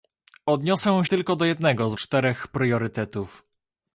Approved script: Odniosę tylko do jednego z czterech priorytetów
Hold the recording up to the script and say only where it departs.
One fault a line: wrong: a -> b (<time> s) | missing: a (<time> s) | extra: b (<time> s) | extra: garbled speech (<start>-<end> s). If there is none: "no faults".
no faults